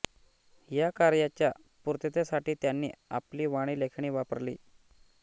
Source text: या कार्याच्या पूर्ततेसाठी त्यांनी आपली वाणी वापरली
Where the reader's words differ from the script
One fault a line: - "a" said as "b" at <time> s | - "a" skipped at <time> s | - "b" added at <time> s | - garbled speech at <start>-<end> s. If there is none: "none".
- "लेखणी" added at 3.8 s